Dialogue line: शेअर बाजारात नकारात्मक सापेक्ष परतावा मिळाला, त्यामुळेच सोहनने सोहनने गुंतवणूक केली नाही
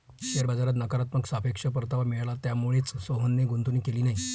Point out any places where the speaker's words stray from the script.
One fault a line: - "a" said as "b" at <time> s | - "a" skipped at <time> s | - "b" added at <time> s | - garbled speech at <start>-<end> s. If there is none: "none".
- "सोहनने" skipped at 3.4 s